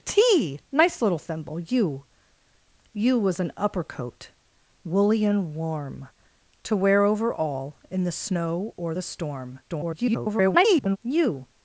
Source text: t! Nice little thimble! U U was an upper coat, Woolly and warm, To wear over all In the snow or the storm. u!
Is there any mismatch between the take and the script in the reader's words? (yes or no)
yes